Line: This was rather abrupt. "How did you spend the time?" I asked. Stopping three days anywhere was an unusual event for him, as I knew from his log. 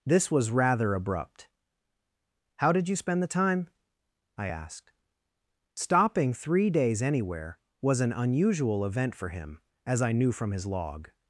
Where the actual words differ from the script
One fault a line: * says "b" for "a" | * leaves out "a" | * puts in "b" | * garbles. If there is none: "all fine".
all fine